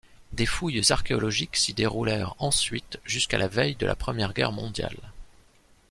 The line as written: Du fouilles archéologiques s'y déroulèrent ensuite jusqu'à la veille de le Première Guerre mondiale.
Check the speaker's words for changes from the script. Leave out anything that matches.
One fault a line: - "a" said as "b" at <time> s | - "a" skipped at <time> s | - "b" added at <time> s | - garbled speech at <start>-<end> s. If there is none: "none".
- "Du" said as "Des" at 0.3 s
- "le" said as "la" at 3.9 s